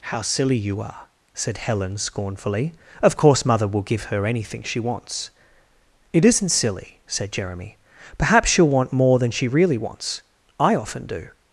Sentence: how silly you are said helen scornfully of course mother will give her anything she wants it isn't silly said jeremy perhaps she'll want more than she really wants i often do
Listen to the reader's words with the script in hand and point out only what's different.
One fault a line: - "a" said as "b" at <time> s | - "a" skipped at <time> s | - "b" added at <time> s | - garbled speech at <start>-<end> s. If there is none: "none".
none